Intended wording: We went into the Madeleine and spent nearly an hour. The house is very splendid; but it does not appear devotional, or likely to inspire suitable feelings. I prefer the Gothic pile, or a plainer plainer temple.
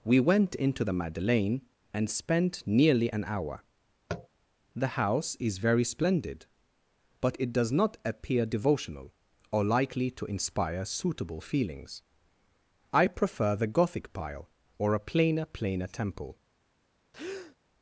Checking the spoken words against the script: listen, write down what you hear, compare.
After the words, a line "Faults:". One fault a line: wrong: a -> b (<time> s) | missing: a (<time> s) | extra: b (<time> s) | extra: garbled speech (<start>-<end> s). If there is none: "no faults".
We went into the Madeleine and spent nearly an hour. The house is very splendid; but it does not appear devotional, or likely to inspire suitable feelings. I prefer the Gothic pile, or a plainer plainer temple.
Faults:
no faults